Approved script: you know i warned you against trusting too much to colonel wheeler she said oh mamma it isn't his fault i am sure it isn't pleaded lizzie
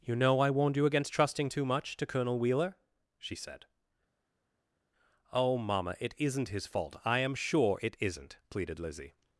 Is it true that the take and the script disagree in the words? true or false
false